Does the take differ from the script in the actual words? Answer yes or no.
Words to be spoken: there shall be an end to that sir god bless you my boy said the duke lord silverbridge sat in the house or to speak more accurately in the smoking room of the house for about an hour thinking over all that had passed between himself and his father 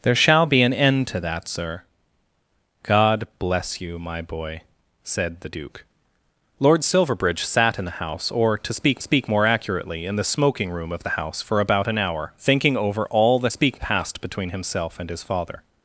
yes